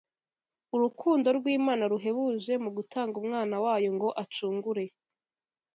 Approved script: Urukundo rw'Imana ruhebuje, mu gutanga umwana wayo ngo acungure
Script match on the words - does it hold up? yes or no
yes